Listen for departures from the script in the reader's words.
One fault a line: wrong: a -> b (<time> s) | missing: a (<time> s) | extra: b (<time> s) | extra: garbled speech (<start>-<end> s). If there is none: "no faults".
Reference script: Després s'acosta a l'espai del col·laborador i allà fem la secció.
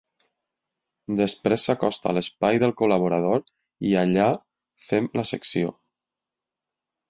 no faults